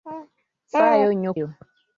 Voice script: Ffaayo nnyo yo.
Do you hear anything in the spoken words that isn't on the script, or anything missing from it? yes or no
no